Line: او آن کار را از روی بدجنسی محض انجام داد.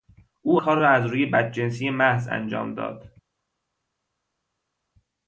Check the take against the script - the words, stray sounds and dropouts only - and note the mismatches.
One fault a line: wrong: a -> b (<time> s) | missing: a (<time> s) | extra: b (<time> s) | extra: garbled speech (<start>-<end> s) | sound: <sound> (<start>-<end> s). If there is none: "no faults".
missing: آن (0.6 s)